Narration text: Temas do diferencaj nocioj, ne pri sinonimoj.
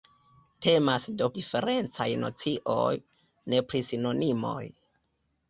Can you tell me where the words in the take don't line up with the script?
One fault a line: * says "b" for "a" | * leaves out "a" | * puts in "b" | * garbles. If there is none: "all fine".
all fine